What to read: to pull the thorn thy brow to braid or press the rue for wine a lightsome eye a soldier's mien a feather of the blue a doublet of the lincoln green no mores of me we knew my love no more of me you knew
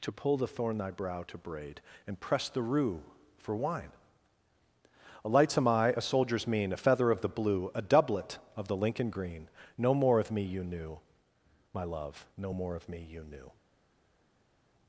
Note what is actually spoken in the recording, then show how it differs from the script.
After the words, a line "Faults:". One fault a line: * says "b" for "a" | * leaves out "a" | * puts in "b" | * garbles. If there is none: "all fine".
to pull the thorn thy brow to braid and press the rue for wine a lightsome eye a soldier's mien a feather of the blue a doublet of the lincoln green no more of me you knew my love no more of me you knew
Faults:
* says "and" for "or"
* says "more" for "mores"
* says "you" for "we"